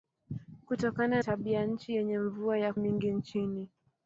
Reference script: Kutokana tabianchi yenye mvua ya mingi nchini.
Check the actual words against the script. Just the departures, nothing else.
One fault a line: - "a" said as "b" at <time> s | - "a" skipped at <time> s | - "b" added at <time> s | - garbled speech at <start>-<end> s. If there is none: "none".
none